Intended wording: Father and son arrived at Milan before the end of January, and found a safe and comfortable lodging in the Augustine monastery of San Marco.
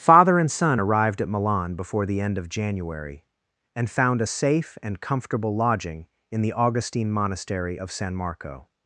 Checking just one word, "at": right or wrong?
right